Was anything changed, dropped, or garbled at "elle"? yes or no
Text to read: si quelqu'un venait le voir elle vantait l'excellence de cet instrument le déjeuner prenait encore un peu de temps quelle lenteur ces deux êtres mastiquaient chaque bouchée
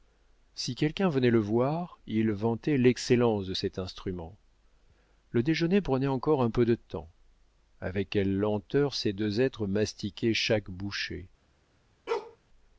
yes